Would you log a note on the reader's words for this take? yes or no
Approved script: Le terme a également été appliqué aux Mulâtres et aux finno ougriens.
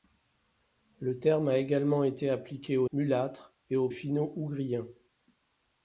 no